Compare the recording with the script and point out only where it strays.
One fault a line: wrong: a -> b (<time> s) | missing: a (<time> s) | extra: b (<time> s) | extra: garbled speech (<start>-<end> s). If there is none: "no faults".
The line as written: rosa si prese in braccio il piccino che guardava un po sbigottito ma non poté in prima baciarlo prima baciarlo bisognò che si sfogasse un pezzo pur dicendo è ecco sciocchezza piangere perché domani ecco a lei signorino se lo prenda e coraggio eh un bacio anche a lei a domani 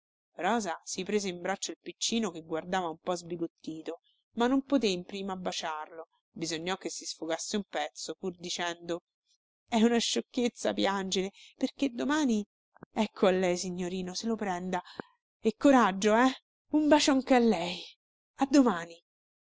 missing: prima baciarlo (6.1 s)
wrong: ecco -> una (9.8 s)